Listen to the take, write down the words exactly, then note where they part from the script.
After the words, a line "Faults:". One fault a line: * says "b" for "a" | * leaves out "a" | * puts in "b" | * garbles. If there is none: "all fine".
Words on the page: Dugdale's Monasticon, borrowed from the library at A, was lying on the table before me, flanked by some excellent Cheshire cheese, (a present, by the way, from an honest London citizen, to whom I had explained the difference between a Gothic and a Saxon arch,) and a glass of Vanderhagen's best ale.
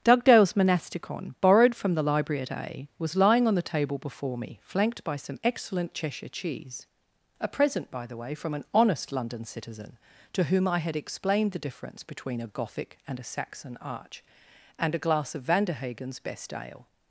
Dugdale's Monasticon, borrowed from the library at A, was lying on the table before me, flanked by some excellent Cheshire cheese, (a present, by the way, from an honest London citizen, to whom I had explained the difference between a Gothic and a Saxon arch,) and a glass of Vanderhagen's best ale.
Faults:
all fine